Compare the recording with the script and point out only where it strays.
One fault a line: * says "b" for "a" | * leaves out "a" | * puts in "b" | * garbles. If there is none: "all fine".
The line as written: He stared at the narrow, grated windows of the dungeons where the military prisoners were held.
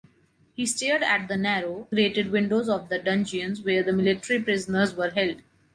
all fine